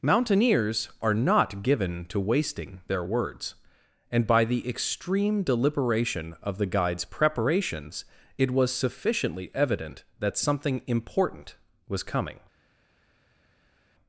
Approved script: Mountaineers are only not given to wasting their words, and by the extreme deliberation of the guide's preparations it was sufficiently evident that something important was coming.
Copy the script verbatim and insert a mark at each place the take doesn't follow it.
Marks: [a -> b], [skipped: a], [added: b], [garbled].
Mountaineers are [skipped: only] not given to wasting their words, and by the extreme deliberation of the guide's preparations it was sufficiently evident that something important was coming.